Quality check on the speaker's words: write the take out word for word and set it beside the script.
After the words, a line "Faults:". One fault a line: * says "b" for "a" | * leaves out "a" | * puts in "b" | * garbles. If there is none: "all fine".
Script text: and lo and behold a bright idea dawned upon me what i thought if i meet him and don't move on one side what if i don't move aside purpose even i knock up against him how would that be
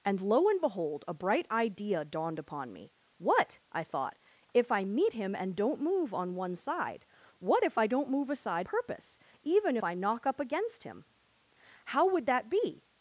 and lo and behold a bright idea dawned upon me what i thought if i meet him and don't move on one side what if i don't move aside purpose even i knock up against him how would that be
Faults:
all fine